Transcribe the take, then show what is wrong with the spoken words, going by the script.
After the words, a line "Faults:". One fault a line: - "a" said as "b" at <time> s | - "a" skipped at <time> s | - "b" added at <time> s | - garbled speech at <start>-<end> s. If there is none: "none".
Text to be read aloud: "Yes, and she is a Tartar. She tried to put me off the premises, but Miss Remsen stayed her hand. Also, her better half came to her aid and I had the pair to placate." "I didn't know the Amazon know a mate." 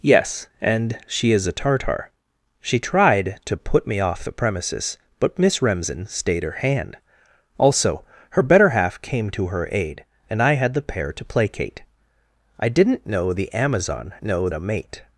"Yes, and she is a Tartar. She tried to put me off the premises, but Miss Remsen stayed her hand. Also, her better half came to her aid and I had the pair to placate." "I didn't know the Amazon know a mate."
Faults:
none